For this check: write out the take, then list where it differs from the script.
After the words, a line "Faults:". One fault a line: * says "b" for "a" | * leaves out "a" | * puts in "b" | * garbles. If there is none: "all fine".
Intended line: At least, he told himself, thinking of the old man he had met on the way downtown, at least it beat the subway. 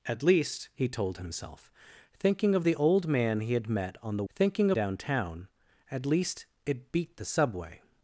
At least, he told himself, thinking of the old man he had met on the thinking downtown, at least it beat the subway.
Faults:
* says "thinking" for "way"